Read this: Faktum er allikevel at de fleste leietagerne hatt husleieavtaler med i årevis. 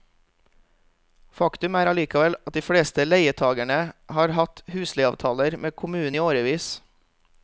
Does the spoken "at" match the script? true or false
true